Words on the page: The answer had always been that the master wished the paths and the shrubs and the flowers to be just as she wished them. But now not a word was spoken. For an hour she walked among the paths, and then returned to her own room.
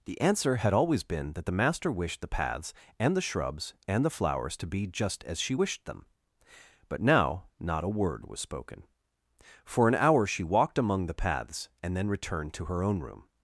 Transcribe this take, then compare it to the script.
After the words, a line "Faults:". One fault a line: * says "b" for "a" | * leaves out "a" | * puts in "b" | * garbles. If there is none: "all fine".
The answer had always been that the master wished the paths and the shrubs and the flowers to be just as she wished them. But now not a word was spoken. For an hour she walked among the paths, and then returned to her own room.
Faults:
all fine